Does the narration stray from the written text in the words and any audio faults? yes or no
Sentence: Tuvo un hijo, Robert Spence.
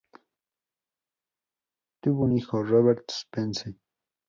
no